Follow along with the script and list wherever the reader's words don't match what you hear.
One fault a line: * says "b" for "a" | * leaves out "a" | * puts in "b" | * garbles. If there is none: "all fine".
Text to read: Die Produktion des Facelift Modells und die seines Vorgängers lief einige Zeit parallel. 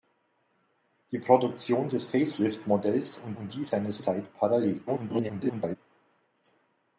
* puts in "und"
* leaves out "Vorgängers lief einige"
* garbles